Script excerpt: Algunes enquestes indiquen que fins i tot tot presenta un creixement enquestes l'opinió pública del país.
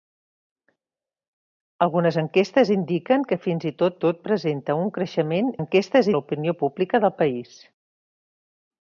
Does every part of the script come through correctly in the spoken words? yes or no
yes